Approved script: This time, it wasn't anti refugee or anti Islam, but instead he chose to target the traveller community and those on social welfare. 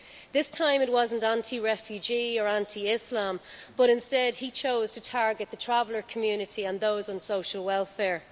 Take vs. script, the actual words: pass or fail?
pass